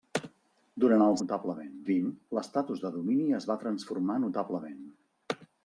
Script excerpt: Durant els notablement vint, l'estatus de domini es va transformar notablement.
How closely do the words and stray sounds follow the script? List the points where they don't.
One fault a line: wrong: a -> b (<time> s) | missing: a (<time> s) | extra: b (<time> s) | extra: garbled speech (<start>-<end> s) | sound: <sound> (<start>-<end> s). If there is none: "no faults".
no faults